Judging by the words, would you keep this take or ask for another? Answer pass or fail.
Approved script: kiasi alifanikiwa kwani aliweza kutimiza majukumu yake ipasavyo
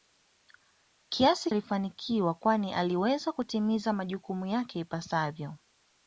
pass